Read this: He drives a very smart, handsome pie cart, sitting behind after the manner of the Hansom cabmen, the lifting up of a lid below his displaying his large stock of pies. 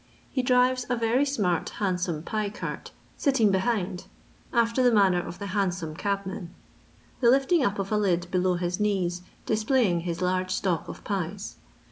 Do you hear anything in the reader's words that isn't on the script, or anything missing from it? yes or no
yes